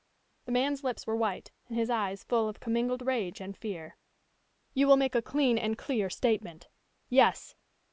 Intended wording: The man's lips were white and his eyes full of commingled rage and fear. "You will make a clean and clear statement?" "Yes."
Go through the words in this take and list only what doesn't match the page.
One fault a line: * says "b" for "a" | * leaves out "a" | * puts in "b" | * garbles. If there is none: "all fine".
all fine